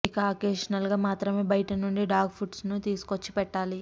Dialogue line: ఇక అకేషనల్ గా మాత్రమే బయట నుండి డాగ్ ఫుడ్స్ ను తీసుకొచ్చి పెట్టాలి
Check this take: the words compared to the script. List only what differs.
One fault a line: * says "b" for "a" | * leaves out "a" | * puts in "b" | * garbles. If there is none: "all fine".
all fine